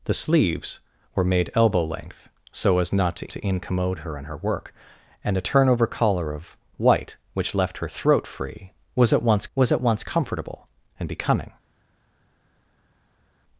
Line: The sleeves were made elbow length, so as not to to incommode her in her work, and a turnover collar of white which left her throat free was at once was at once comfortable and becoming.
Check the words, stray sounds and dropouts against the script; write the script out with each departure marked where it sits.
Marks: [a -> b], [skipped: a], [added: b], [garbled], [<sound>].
The sleeves were made elbow length, so as not to to incommode her in her work, and a turnover collar of white which left her throat free was at once was at once comfortable and becoming.